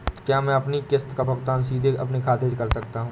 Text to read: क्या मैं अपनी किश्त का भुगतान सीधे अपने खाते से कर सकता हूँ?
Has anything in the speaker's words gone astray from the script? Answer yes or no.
no